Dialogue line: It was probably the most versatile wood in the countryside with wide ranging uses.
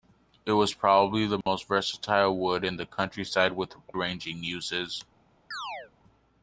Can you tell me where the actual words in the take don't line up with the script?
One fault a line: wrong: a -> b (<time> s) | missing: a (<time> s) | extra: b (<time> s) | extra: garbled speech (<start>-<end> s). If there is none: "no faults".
missing: wide (3.8 s)